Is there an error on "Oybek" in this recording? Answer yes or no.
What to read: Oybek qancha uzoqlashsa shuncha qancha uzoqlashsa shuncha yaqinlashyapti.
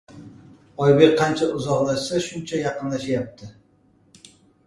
no